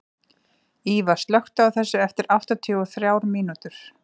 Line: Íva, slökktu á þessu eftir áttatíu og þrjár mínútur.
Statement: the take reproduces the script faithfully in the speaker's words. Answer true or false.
true